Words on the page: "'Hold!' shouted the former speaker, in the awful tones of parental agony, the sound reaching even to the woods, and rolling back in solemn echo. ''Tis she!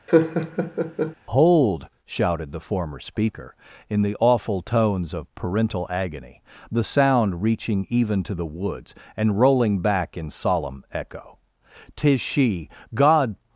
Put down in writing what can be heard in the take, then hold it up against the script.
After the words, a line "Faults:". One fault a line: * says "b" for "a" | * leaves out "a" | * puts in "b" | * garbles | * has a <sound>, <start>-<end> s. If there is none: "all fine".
"'Hold!' shouted the former speaker, in the awful tones of parental agony, the sound reaching even to the woods, and rolling back in solemn echo. ''Tis she! God
Faults:
* has a laugh, 0.1-1.1 s
* puts in "God"